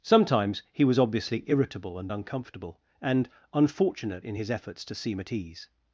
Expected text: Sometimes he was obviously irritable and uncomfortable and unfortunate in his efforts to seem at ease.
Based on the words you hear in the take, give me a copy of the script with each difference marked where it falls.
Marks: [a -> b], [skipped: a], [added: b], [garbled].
Sometimes he was obviously irritable and uncomfortable and unfortunate in his efforts to seem at ease.